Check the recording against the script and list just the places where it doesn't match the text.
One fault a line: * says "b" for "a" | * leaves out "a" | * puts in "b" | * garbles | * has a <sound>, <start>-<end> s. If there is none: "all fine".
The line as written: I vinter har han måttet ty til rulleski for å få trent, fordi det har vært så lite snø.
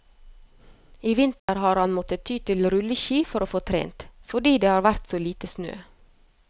* has a dropout, 1.4-1.5 s